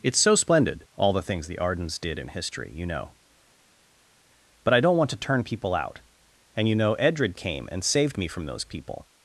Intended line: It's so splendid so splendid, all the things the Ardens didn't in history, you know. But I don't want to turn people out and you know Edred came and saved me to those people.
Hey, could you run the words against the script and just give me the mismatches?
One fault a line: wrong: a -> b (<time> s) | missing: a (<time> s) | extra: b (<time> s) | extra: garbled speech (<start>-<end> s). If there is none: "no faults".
missing: so splendid (0.9 s)
wrong: didn't -> did (2.0 s)
wrong: to -> from (8.3 s)